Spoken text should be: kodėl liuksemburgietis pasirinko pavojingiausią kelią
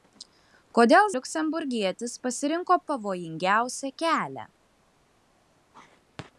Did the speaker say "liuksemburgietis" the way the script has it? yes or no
yes